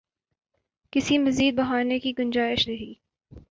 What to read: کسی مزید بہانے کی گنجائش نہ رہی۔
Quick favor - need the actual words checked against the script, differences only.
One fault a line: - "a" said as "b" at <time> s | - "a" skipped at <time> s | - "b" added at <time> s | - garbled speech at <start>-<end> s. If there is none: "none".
- "نہ" skipped at 2.7 s